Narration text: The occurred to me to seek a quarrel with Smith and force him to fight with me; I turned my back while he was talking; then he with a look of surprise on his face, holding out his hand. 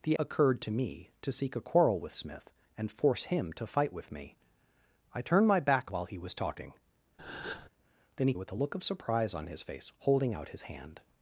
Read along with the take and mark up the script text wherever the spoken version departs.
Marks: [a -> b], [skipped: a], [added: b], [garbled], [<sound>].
The occurred to me to seek a quarrel with Smith and force him to fight with me; I turned my back while he was talking; [breath] then he with a look of surprise on his face, holding out his hand.